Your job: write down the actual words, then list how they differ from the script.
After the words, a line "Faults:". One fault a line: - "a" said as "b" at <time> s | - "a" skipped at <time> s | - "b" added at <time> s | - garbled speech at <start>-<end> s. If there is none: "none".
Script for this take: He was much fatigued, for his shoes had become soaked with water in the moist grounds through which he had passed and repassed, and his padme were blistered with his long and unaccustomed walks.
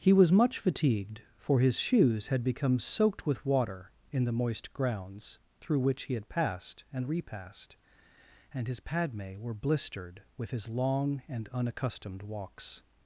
He was much fatigued, for his shoes had become soaked with water in the moist grounds through which he had passed and repassed, and his padme were blistered with his long and unaccustomed walks.
Faults:
none